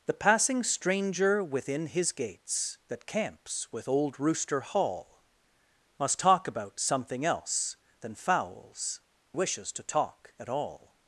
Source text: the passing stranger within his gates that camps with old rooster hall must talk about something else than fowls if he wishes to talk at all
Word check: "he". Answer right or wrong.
wrong